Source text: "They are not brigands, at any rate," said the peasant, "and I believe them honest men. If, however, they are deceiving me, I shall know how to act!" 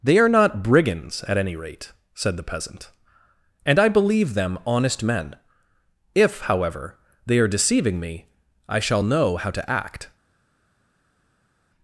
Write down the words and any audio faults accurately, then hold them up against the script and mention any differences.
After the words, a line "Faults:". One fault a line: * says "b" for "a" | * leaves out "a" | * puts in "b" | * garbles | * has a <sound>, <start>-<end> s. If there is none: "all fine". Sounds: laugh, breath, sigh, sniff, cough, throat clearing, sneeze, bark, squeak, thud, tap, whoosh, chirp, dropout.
"They are not brigands, at any rate," said the peasant, "and I believe them honest men. If, however, they are deceiving me, I shall know how to act!"
Faults:
all fine